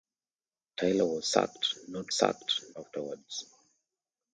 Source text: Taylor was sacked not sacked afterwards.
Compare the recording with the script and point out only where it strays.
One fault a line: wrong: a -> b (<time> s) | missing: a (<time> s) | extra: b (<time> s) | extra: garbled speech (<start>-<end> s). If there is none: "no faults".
no faults